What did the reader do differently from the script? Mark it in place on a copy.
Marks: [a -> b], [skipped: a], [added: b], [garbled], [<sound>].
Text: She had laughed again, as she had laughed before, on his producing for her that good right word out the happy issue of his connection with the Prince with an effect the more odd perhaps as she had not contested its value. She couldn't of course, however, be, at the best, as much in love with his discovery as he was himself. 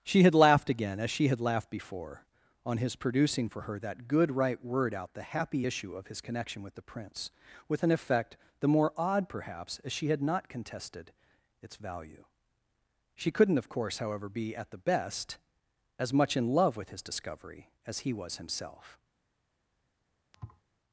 She had laughed again, as she had laughed before, on his producing for her that good right word out the happy issue of his connection with the Prince with an effect the more odd perhaps as she had not contested its value. She couldn't of course, however, be, at the best, as much in love with his discovery as he was himself. [thud]